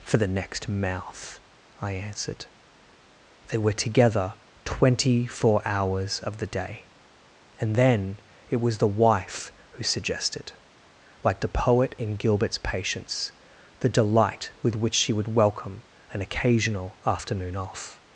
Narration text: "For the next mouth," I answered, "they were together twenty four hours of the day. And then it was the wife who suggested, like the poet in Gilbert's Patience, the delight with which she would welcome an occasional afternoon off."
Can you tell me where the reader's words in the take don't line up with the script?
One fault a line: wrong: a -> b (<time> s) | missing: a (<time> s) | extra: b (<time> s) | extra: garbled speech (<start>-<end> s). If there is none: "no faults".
no faults